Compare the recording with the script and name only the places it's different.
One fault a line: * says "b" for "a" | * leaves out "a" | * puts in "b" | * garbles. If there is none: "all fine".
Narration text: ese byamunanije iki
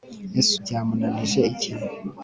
all fine